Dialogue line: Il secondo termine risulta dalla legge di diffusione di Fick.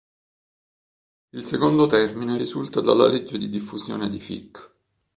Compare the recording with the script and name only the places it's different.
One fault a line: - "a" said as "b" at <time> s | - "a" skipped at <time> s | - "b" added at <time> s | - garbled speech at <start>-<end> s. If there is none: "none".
none